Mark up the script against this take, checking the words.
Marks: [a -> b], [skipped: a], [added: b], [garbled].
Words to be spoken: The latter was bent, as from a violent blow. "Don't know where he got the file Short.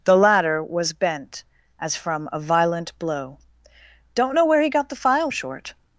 The latter was bent, as from a violent blow. "Don't know where he got the file Short.